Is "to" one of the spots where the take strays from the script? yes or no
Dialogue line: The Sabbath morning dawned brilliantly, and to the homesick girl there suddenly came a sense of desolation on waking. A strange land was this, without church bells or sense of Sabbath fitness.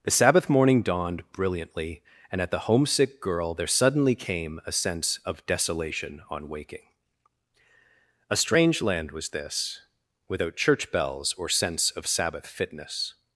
yes